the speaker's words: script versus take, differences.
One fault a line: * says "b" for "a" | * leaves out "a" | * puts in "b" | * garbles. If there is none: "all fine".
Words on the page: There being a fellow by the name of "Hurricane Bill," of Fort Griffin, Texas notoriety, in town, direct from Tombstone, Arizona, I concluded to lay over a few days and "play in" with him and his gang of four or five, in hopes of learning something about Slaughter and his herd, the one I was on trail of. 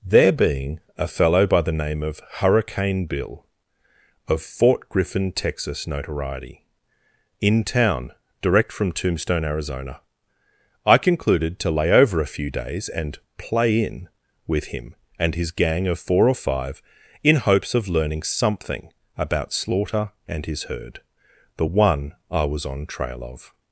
all fine